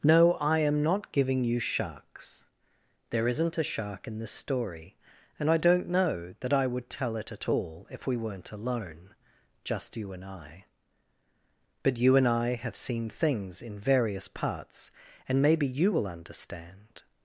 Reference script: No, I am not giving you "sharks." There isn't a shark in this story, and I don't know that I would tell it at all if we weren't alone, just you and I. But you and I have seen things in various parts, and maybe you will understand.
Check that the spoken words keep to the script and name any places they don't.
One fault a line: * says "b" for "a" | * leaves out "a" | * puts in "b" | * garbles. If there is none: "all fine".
all fine